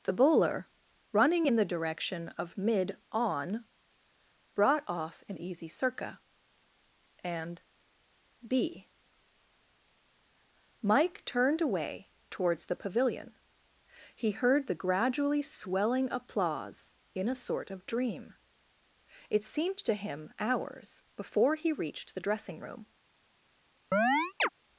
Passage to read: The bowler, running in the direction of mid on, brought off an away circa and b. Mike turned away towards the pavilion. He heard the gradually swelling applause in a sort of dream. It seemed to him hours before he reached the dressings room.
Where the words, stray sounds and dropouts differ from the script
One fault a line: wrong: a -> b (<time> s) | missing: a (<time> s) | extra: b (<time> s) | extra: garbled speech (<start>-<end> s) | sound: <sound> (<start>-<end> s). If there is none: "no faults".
wrong: away -> easy (5.4 s)
wrong: dressings -> dressing (22.2 s)
sound: chirp (23.9-24.5 s)